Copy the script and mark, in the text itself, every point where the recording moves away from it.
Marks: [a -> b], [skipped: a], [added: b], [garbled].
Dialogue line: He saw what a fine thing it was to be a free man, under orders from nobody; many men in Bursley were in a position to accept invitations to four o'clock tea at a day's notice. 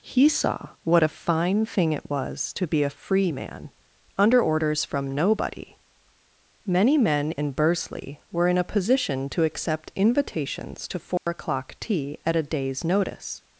He saw what a fine thing it was to be a free man, under orders from nobody; many men in Bursley were in a position to accept invitations to four o'clock tea at a day's notice.